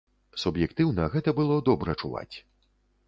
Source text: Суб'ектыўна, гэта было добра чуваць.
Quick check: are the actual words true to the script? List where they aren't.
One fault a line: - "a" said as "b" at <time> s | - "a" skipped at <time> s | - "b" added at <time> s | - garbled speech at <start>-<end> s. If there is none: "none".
none